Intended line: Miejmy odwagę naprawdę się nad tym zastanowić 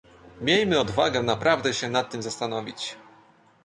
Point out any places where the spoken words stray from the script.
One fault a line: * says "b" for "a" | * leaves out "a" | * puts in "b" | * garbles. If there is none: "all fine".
all fine